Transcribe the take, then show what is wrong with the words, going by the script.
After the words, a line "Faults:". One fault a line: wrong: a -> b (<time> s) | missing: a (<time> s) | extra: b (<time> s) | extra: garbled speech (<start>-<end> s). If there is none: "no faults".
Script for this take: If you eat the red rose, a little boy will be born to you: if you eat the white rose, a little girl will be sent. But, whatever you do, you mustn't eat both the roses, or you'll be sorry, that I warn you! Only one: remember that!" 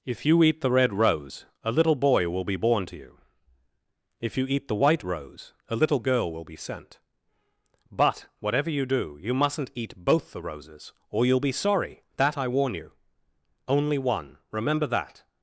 If you eat the red rose, a little boy will be born to you: if you eat the white rose, a little girl will be sent. But, whatever you do, you mustn't eat both the roses, or you'll be sorry, that I warn you! Only one: remember that!"
Faults:
no faults